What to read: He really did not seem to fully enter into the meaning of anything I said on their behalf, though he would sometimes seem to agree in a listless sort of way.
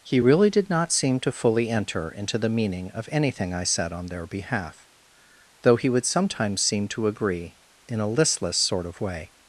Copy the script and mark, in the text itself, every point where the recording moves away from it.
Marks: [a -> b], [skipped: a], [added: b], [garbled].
He really did not seem to fully enter into the meaning of anything I said on their behalf, though he would sometimes seem to agree in a listless sort of way.